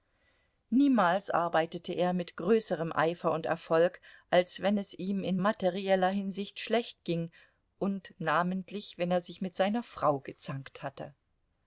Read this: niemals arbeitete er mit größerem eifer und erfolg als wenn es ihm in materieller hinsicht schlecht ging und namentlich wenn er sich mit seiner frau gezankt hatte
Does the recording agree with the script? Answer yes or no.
yes